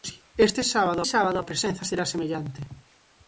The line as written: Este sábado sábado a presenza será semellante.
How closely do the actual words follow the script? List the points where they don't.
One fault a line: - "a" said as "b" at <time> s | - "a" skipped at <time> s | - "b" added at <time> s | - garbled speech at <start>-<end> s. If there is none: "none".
none